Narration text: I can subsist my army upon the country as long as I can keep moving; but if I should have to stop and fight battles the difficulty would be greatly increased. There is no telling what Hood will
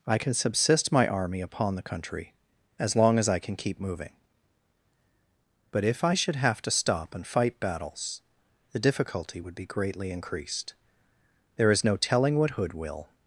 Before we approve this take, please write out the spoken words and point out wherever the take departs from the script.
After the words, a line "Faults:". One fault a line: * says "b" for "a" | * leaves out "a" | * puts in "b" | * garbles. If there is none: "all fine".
I can subsist my army upon the country as long as I can keep moving; but if I should have to stop and fight battles the difficulty would be greatly increased. There is no telling what Hood will
Faults:
all fine